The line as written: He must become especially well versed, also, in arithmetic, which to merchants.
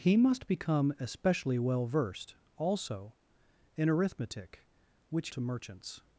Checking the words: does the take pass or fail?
pass